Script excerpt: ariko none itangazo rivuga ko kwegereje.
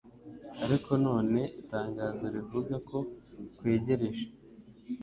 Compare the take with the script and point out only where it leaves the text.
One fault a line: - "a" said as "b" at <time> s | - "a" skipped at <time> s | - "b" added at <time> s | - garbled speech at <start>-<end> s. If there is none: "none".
none